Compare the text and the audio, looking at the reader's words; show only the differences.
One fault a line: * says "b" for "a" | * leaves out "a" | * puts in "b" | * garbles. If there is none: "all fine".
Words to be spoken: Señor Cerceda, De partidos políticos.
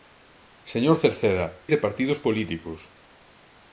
all fine